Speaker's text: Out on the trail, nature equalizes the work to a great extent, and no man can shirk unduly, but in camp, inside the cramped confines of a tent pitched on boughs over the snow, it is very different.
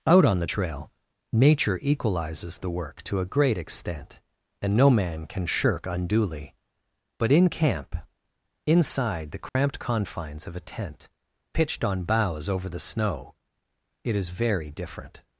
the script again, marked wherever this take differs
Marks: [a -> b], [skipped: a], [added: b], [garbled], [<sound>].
Out on the trail, nature equalizes the work to a great extent, and no man can shirk unduly, but in camp, inside the cramped [dropout] confines of a tent pitched on boughs over the snow, it is very different.